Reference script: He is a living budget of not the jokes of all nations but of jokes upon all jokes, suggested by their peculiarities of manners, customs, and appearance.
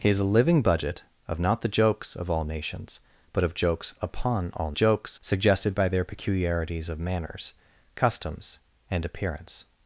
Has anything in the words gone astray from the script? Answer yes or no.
no